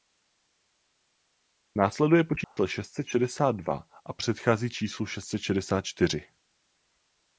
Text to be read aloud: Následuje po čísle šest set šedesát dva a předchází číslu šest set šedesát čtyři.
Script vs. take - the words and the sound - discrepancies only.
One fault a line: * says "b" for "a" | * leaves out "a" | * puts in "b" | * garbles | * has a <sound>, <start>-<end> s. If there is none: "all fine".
* has a dropout, 2.4-2.6 s